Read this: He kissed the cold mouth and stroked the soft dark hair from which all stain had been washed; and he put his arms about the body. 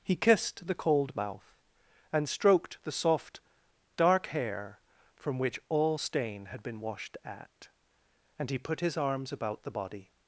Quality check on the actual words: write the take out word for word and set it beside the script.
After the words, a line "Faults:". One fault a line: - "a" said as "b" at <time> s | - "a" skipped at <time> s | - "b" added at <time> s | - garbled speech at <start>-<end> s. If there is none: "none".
He kissed the cold mouth and stroked the soft dark hair from which all stain had been washed; at and he put his arms about the body.
Faults:
- "at" added at 7.2 s